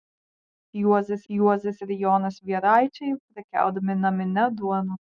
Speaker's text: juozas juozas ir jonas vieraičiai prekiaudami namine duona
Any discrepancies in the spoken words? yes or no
no